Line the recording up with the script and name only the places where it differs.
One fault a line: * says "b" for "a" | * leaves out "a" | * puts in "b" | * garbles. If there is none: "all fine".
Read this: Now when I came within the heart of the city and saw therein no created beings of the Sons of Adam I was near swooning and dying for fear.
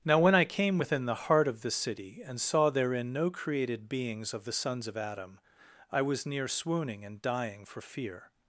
all fine